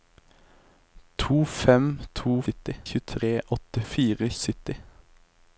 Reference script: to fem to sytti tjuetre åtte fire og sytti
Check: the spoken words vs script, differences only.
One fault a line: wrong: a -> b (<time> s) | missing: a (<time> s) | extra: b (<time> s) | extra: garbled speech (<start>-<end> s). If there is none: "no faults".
no faults